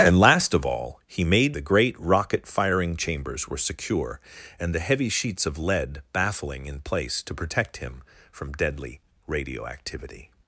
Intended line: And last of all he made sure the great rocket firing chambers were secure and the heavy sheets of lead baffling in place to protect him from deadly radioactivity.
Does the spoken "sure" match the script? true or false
false